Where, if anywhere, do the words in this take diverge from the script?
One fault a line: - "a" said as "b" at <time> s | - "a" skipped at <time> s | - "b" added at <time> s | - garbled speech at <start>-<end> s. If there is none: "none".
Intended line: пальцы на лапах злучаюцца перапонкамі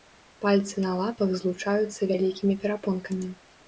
- "вялікімі" added at 2.1 s